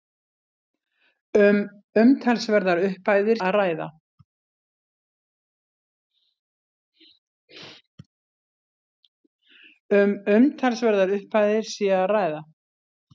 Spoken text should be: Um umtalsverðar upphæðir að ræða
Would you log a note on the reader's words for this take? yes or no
no